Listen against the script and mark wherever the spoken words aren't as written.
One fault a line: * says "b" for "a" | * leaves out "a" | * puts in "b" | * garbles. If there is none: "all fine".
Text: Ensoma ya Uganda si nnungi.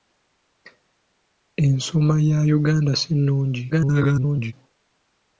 * garbles